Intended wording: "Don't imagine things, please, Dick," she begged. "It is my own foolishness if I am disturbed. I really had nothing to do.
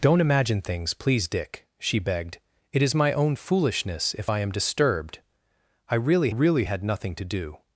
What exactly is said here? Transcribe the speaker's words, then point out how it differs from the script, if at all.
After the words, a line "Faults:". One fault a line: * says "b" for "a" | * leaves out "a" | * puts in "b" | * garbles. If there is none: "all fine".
"Don't imagine things, please, Dick," she begged. "It is my own foolishness if I am disturbed. I really really had nothing to do.
Faults:
* puts in "really"